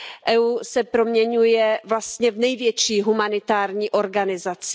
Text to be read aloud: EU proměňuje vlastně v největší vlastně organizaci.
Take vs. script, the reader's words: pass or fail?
fail